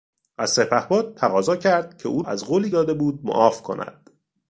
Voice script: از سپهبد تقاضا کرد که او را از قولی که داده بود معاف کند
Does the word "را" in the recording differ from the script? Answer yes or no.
yes